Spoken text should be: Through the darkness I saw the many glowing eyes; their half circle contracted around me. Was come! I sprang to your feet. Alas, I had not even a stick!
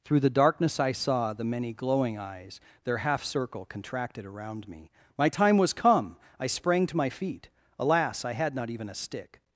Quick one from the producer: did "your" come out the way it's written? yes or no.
no